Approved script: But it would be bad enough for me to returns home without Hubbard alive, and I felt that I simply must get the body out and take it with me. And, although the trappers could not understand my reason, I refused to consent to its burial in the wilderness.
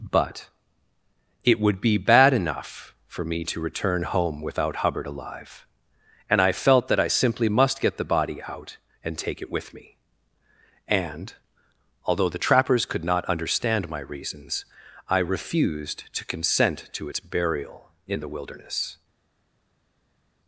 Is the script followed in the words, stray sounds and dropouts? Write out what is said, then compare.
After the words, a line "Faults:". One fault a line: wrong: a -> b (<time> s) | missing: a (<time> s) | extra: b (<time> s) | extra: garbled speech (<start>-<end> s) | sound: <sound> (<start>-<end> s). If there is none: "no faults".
But it would be bad enough for me to return home without Hubbard alive, and I felt that I simply must get the body out and take it with me. And, although the trappers could not understand my reasons, I refused to consent to its burial in the wilderness.
Faults:
wrong: returns -> return (3.6 s)
wrong: reason -> reasons (14.0 s)